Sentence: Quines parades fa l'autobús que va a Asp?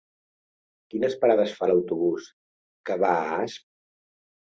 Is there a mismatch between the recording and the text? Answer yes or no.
no